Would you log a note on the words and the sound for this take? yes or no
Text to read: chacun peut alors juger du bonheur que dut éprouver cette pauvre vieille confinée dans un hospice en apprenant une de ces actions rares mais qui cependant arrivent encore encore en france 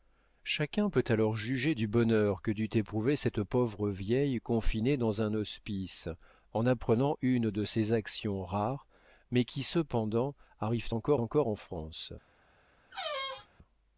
yes